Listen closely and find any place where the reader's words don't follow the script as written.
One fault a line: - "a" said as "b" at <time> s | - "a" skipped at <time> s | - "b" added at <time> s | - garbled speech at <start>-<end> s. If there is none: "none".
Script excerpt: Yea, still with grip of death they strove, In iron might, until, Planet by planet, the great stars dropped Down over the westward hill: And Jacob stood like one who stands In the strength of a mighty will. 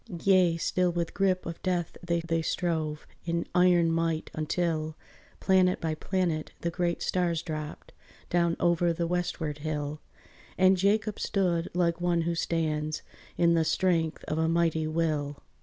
- "they" added at 2.2 s